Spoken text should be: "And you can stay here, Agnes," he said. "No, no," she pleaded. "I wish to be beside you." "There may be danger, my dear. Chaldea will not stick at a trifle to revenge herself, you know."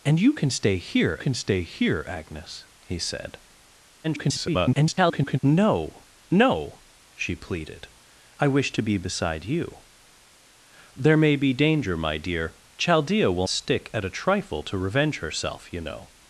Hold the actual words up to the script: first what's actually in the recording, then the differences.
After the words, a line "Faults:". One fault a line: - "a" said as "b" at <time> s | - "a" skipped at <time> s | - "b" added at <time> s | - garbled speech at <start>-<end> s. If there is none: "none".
"And you can stay here can stay here, Agnes," he said. [garbled] "No, no," she pleaded. "I wish to be beside you." "There may be danger, my dear. Chaldea will stick at a trifle to revenge herself, you know."
Faults:
- "can stay here" added at 1.2 s
- garbled speech at 4.0-5.4 s
- "not" skipped at 13.5 s